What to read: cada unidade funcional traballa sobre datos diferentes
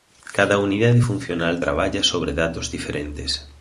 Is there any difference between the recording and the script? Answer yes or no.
no